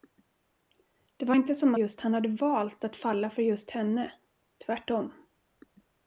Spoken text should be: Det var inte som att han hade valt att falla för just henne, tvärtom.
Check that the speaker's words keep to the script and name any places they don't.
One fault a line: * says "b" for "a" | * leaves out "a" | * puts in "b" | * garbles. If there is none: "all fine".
* says "just" for "att"